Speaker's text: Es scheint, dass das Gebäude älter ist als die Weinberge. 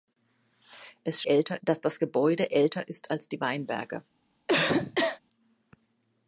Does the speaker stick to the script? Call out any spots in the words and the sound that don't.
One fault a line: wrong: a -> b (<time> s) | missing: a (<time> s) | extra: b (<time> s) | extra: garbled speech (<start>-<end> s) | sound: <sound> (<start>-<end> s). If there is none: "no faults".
wrong: scheint -> älter (1.2 s)
sound: cough (4.5-5.2 s)